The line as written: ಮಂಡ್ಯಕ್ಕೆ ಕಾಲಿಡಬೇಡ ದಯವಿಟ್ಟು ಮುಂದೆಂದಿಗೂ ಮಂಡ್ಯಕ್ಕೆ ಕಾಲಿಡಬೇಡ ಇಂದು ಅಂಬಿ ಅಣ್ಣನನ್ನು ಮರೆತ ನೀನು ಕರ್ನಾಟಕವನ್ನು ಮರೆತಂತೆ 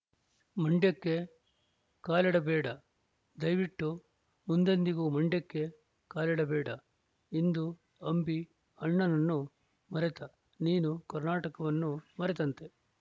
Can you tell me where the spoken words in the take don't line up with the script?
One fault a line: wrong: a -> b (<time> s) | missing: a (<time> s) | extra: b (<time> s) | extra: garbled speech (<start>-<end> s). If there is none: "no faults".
no faults